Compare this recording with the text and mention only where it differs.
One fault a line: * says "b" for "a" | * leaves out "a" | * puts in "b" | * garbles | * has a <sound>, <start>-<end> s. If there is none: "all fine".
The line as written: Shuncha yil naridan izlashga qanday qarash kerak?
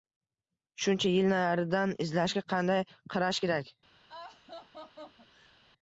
* has a laugh, 4.1-5.6 s